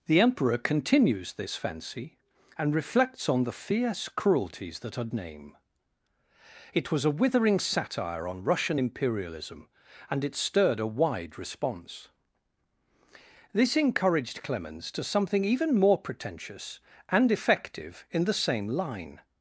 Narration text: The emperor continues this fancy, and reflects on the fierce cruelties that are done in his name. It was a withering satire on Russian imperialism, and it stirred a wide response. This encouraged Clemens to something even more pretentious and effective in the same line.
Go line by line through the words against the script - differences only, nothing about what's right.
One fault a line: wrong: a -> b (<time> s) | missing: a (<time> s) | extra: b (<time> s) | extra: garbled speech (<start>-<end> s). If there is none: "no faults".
missing: done in his (5.1 s)